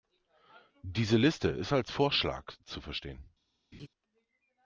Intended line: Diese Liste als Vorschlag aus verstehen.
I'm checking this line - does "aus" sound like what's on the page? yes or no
no